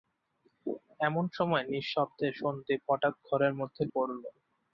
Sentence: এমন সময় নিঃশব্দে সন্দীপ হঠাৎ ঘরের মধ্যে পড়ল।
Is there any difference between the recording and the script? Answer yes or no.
no